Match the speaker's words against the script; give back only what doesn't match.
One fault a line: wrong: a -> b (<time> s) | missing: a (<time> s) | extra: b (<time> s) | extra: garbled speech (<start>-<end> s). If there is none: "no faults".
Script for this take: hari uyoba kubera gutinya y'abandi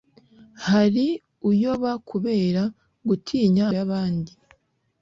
no faults